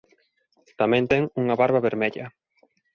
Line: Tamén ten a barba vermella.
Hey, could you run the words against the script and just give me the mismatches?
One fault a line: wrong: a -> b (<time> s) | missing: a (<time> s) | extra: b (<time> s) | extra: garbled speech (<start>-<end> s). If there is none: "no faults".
wrong: a -> unha (1.4 s)